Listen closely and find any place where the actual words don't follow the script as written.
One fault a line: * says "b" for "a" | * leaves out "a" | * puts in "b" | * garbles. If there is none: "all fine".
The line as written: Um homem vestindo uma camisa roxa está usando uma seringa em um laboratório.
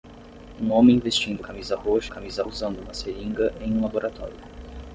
* leaves out "uma"
* says "camisa" for "está"